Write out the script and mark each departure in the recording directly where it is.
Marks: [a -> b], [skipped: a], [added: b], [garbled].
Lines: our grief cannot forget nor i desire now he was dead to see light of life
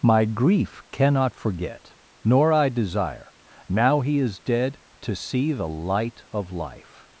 [our -> my] grief cannot forget nor i desire now he [was -> is] dead to see [added: the] light of life